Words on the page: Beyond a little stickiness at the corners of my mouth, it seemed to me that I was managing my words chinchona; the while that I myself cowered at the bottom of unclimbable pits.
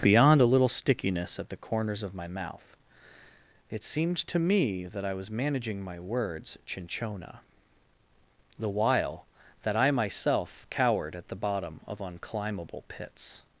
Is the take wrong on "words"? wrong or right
right